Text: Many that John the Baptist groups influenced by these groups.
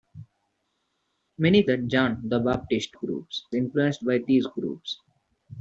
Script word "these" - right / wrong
right